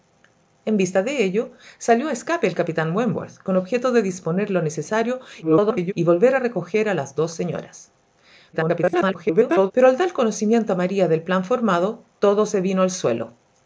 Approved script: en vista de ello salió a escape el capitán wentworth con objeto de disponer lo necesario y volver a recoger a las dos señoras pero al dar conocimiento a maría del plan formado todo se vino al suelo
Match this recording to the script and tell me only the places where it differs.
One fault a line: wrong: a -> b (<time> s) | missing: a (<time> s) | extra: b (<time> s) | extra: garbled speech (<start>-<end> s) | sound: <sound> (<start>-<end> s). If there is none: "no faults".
extra: garbled speech (5.4-5.9 s)
extra: garbled speech (8.5-9.7 s)